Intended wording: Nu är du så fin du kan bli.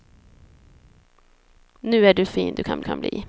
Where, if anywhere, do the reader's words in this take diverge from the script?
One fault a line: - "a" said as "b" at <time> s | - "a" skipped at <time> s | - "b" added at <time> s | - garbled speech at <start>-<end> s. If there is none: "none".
- "så" skipped at 2.2 s
- "kan" added at 2.8 s